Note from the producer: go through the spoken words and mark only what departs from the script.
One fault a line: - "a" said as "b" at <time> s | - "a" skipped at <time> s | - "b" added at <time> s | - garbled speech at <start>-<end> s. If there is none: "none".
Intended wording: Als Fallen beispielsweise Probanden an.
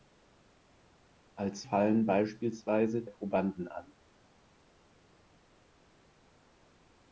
none